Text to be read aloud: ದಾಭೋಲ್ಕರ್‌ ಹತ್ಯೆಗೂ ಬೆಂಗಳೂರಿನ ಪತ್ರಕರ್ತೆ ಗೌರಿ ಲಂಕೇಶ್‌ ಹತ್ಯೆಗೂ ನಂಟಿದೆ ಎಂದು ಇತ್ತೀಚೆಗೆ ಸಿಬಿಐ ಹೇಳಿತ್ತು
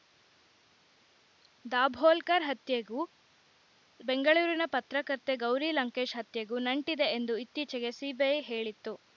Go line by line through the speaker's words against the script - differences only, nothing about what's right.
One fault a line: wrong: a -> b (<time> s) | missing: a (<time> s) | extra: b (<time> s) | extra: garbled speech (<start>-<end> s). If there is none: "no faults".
no faults